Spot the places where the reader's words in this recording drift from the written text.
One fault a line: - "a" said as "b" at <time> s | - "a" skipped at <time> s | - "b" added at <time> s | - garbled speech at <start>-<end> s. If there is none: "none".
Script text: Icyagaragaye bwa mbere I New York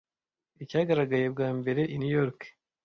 none